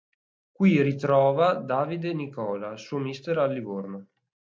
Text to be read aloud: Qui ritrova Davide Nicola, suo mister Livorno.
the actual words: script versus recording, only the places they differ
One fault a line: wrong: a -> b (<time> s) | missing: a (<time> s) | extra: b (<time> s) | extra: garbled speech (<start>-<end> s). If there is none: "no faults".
extra: al (3.4 s)